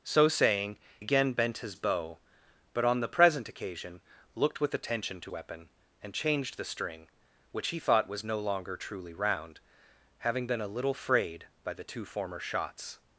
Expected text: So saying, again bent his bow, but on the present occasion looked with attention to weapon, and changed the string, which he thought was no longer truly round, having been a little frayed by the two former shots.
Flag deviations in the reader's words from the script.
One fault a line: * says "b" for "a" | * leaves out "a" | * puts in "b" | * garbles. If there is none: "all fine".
all fine